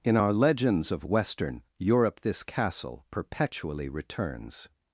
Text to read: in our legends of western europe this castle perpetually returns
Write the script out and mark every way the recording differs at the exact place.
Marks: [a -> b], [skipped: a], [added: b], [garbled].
in our legends of western europe this castle perpetually returns